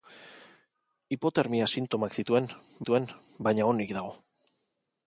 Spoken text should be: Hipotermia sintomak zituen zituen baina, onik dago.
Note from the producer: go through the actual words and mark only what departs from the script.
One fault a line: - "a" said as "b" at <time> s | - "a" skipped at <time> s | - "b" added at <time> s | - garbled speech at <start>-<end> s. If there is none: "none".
none